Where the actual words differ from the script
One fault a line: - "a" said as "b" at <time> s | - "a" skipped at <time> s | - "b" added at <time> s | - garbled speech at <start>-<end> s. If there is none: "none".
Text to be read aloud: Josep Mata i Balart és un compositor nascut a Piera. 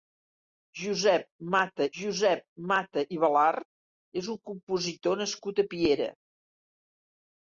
- "josep Mata" added at 2.0 s